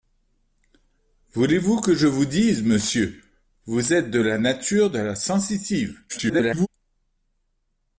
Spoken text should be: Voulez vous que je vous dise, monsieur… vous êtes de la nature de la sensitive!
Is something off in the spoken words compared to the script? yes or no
yes